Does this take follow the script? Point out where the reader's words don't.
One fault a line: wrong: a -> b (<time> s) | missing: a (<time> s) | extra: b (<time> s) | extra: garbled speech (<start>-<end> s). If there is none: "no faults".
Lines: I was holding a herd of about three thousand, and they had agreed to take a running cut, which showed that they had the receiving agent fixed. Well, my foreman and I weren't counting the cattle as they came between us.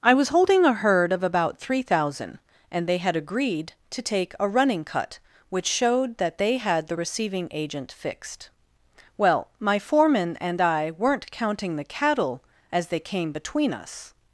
no faults